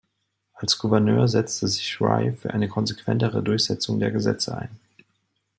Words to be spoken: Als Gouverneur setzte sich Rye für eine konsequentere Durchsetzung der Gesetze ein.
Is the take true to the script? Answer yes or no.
yes